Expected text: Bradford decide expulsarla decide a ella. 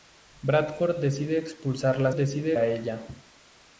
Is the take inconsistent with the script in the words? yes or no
no